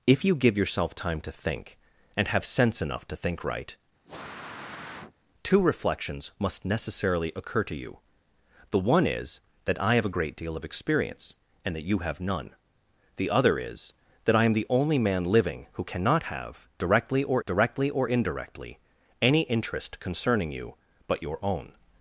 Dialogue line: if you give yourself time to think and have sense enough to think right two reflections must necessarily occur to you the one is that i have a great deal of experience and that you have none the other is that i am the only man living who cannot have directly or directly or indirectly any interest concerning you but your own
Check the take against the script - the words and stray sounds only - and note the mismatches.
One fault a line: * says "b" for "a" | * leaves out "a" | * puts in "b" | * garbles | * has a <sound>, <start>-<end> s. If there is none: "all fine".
* has a sniff, 4.0-5.1 s